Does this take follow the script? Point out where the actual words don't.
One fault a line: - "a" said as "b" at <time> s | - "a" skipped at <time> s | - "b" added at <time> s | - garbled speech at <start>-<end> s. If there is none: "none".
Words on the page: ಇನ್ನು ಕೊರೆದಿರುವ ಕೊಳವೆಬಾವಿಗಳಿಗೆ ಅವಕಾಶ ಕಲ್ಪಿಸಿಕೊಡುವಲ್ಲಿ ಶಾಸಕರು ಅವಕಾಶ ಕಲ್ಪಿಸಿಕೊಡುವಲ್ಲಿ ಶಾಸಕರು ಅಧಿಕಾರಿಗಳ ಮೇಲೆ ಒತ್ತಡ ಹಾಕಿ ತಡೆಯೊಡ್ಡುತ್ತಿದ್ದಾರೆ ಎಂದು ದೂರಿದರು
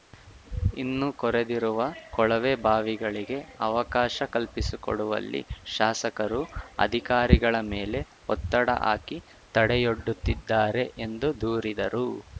- "ಅವಕಾಶ ಕಲ್ಪಿಸಿಕೊಡುವಲ್ಲಿ ಶಾಸಕರು" skipped at 6.4 s